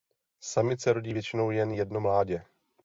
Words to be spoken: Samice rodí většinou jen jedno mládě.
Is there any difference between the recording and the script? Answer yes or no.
no